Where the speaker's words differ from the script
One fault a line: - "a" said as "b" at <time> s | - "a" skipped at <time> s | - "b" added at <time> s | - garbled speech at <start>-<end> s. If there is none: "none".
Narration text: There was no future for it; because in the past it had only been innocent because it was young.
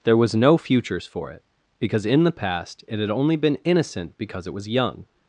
- "future" said as "futures" at 0.6 s